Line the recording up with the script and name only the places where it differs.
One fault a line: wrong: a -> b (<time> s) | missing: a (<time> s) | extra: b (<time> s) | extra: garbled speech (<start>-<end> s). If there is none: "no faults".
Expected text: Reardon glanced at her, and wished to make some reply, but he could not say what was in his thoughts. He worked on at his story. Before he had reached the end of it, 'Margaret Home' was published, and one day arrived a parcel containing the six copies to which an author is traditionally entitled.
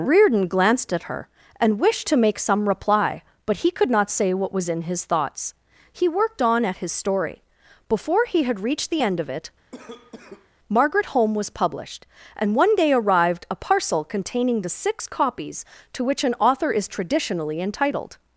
no faults